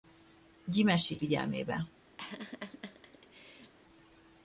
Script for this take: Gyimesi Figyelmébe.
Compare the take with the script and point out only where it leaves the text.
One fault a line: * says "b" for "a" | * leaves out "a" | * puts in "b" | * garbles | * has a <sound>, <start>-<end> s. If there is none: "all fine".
* has a laugh, 2.2-3.7 s